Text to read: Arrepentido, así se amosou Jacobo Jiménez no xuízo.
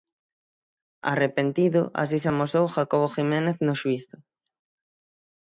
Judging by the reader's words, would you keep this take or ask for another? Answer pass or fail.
pass